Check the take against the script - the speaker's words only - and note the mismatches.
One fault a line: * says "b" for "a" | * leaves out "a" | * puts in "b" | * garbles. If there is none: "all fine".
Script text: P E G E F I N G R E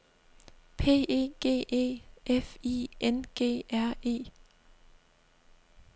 all fine